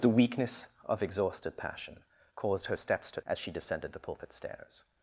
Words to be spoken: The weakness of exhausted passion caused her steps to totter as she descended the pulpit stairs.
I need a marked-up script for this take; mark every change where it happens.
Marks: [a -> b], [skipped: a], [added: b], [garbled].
The weakness of exhausted passion caused her steps to [skipped: totter] as she descended the pulpit stairs.